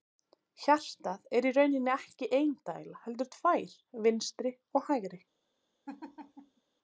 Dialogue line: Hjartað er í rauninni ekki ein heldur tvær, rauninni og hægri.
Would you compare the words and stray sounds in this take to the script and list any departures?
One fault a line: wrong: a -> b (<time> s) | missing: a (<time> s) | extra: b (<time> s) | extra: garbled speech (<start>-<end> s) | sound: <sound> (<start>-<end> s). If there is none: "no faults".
extra: dæla (2.7 s)
wrong: rauninni -> vinstri (4.1 s)
sound: laugh (5.9-6.6 s)